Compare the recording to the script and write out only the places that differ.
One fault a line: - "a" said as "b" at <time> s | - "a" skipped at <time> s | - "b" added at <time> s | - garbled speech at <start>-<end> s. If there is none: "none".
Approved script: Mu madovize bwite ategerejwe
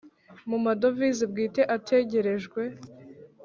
none